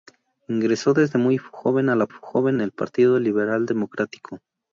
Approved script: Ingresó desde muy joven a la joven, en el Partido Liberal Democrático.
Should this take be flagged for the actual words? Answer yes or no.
no